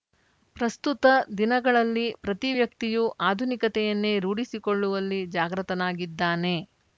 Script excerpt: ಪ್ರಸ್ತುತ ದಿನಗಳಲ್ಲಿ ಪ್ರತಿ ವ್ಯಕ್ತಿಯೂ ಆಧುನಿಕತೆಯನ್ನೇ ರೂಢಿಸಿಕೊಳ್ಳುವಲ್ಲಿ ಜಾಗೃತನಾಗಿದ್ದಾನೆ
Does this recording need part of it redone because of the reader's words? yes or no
no